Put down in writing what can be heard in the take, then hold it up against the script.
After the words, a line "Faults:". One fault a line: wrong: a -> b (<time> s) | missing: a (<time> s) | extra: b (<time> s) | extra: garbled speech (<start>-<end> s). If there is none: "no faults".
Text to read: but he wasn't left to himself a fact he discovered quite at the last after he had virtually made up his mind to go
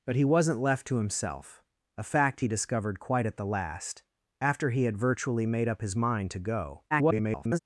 but he wasn't left to himself a fact he discovered quite at the last after he had virtually made up his mind to go [garbled]
Faults:
extra: garbled speech (6.9-7.6 s)